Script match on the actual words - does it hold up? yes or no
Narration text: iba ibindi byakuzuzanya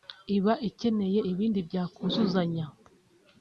no